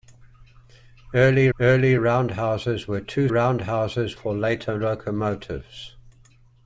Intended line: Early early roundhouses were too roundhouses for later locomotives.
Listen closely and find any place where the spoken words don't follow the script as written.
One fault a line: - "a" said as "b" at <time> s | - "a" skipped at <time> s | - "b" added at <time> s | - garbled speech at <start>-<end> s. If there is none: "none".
none